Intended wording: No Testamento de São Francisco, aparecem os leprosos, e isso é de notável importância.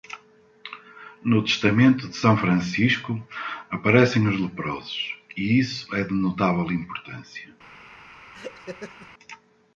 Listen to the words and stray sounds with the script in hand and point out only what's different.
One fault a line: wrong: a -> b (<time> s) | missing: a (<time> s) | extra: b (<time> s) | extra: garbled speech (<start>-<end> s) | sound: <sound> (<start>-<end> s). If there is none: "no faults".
sound: laugh (8.3-9.1 s)